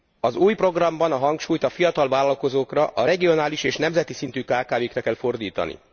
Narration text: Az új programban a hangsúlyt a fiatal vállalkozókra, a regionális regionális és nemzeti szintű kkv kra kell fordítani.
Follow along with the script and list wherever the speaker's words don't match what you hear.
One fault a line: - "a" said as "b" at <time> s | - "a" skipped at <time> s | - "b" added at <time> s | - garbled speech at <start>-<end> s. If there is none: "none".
- "regionális" skipped at 3.6 s